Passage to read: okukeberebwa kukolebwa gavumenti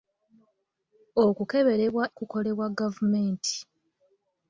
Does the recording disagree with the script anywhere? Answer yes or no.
no